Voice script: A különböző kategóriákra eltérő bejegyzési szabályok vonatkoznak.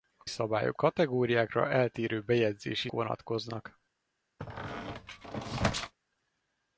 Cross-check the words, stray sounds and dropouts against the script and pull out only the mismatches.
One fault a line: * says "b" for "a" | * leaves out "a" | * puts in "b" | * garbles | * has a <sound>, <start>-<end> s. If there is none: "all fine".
* says "szabályok" for "különböző"
* leaves out "szabályok"
* has a squeak, 4.4-5.9 s